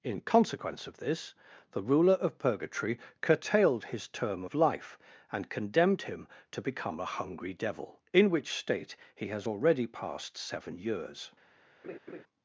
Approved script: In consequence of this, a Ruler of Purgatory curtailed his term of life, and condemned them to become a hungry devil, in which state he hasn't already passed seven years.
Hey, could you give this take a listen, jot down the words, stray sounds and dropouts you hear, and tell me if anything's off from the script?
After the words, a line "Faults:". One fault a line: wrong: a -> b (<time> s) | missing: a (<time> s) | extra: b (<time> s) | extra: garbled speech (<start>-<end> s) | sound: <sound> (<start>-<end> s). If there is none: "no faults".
In consequence of this, the Ruler of Purgatory curtailed his term of life, and condemned him to become a hungry devil, in which state he has already passed seven years.
Faults:
wrong: a -> the (1.7 s)
wrong: them -> him (6.0 s)
wrong: hasn't -> has (9.3 s)
sound: laugh (11.8-12.2 s)